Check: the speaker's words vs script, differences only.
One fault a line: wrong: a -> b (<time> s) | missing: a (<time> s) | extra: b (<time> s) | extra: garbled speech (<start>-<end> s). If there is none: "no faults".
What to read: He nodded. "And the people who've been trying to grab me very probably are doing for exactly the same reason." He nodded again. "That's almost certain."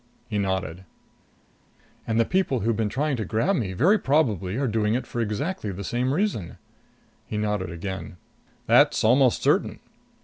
extra: it (5.0 s)